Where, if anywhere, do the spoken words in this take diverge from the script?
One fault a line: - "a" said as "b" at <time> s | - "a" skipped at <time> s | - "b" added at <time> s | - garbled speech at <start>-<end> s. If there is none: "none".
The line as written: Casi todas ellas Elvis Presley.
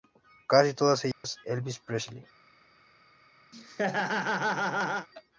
none